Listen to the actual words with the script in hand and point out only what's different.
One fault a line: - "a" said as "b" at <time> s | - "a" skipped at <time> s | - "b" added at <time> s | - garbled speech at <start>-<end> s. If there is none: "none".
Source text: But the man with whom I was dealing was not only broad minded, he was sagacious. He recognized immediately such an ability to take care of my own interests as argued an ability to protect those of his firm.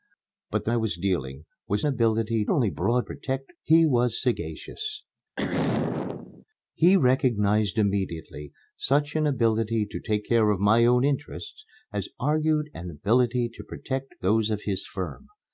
- "man with whom" skipped at 0.7 s
- "not" said as "ability" at 1.9 s
- "minded" said as "protect" at 3.0 s